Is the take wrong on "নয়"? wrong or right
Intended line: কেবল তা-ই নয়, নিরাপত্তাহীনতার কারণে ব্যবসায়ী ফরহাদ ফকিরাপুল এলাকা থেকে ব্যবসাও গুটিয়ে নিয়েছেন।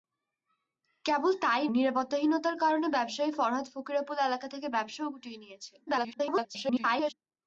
wrong